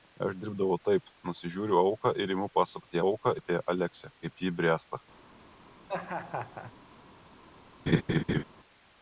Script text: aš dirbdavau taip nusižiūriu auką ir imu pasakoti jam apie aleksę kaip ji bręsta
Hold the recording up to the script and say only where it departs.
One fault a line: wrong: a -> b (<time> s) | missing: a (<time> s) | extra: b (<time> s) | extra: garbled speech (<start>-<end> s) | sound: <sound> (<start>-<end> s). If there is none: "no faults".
wrong: jam -> auką (3.0 s)
sound: laugh (5.9-6.7 s)
sound: laugh (7.9-8.4 s)